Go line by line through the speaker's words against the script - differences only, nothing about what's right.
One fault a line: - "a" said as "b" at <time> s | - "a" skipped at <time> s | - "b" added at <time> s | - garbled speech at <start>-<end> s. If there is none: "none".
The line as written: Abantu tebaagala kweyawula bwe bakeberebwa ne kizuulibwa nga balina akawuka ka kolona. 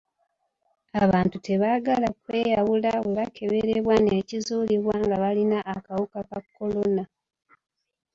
none